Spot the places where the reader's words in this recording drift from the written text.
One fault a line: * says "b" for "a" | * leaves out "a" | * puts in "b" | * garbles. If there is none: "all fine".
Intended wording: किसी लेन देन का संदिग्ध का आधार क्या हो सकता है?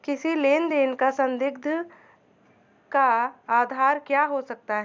all fine